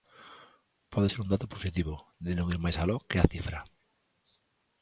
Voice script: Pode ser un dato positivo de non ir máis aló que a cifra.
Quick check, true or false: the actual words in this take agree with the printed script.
true